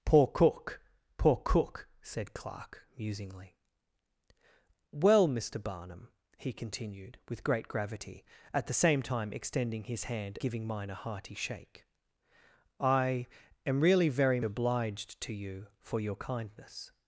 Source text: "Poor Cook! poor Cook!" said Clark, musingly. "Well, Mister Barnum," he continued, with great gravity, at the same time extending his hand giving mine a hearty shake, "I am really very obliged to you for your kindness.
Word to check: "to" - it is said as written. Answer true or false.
true